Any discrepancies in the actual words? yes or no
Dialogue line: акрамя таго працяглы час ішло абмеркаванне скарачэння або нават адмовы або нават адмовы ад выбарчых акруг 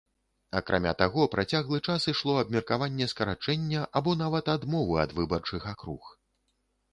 yes